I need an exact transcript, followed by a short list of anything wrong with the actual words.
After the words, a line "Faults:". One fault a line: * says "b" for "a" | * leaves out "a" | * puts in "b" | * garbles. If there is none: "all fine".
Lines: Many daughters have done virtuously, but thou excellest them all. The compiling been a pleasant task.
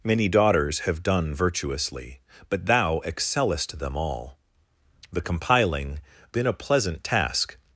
Many daughters have done virtuously, but thou excellest them all. The compiling been a pleasant task.
Faults:
all fine